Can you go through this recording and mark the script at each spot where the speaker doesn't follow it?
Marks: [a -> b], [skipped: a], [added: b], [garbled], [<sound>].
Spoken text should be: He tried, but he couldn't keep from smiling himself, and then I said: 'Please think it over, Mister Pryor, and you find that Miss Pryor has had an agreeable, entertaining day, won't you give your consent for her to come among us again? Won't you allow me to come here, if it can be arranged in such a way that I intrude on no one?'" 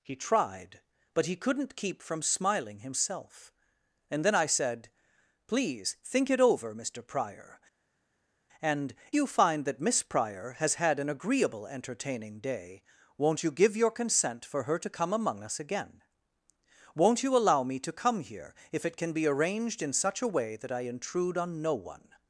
He tried, but he couldn't keep from smiling himself, and then I said: 'Please think it over, Mister Pryor, and you find that Miss Pryor has had an agreeable, entertaining day, won't you give your consent for her to come among us again? Won't you allow me to come here, if it can be arranged in such a way that I intrude on no one?'"